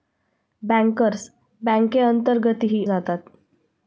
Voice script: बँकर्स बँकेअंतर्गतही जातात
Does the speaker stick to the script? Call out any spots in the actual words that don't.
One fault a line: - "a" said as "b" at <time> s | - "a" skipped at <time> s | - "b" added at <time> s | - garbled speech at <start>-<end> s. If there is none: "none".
none